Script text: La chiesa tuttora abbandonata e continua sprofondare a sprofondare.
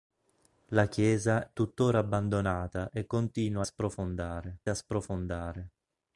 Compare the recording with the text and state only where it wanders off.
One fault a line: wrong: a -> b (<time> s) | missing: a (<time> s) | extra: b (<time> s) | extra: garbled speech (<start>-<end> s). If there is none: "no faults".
no faults